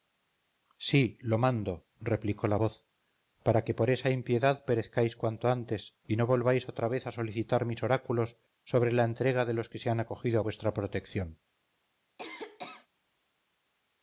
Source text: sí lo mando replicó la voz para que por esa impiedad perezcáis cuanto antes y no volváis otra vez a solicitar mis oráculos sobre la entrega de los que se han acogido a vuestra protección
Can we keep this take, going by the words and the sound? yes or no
no